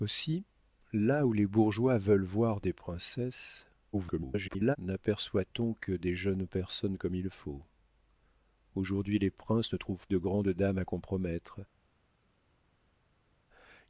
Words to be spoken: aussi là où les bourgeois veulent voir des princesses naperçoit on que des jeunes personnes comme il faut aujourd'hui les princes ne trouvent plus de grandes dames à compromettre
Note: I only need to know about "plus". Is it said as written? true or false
false